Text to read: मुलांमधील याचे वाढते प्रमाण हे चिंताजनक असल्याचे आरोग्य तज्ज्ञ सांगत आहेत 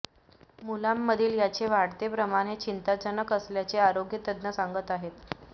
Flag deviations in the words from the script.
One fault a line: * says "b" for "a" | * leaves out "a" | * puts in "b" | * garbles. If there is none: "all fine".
all fine